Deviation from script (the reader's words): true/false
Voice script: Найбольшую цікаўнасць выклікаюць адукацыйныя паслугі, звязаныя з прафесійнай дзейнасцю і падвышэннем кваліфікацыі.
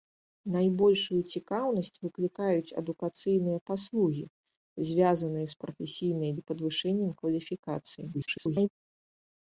true